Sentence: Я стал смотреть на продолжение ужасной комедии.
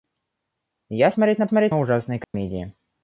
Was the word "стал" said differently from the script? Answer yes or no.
yes